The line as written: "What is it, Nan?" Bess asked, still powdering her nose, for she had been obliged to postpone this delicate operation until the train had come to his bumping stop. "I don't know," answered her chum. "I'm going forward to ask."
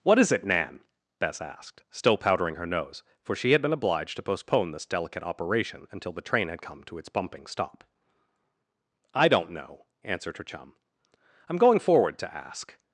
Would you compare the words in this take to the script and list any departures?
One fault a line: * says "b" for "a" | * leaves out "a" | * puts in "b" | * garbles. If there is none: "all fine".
* says "its" for "his"